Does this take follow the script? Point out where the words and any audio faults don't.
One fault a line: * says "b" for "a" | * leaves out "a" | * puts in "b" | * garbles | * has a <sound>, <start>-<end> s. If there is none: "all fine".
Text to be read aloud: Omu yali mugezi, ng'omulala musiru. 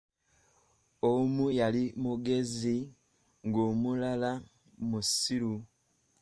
all fine